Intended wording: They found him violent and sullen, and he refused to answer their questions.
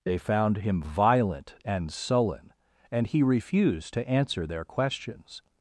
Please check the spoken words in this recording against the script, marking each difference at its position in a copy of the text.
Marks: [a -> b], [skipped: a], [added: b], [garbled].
They found him violent and sullen, and he refused to answer their questions.